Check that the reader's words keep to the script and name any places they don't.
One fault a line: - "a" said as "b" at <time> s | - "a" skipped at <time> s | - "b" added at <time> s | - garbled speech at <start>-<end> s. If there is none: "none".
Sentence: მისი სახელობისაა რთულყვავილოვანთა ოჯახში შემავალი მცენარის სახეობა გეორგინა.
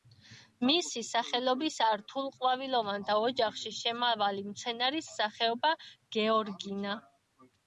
none